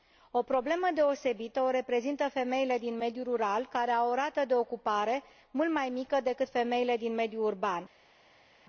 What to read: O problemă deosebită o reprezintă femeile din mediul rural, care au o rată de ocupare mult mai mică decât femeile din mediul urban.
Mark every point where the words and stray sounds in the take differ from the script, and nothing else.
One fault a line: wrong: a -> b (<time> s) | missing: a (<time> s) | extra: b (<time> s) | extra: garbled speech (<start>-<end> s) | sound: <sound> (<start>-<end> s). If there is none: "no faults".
no faults